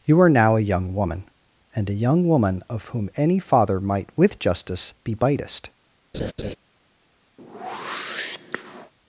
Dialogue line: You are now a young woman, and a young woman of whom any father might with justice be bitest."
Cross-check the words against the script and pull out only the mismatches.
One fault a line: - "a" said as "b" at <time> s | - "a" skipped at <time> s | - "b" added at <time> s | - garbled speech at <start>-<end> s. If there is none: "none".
none